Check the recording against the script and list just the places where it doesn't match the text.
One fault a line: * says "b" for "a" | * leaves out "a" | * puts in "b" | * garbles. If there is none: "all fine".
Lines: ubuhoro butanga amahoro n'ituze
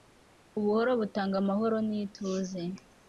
all fine